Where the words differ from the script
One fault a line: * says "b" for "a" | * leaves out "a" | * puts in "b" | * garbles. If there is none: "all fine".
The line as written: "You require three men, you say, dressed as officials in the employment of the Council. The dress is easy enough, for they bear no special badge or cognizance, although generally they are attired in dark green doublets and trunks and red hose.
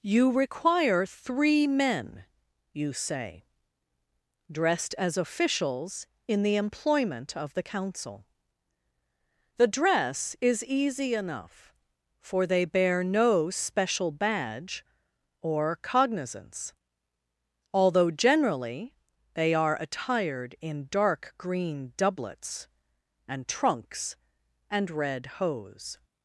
all fine